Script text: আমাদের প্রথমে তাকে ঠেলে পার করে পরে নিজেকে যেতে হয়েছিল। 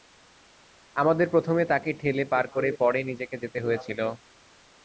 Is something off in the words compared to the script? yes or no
no